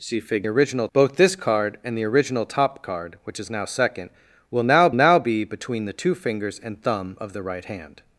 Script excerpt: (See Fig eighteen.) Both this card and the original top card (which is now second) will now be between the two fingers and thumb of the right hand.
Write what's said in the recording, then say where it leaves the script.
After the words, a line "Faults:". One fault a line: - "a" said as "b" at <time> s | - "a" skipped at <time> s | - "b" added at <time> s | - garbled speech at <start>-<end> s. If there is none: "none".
(See Fig original.) Both this card and the original top card (which is now second) will now now be between the two fingers and thumb of the right hand.
Faults:
- "eighteen" said as "original" at 0.5 s
- "now" added at 4.9 s